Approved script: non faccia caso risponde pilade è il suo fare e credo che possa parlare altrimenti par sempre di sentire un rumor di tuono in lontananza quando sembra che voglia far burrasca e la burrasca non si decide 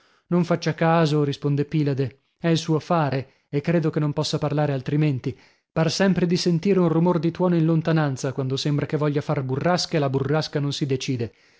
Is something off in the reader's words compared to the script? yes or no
yes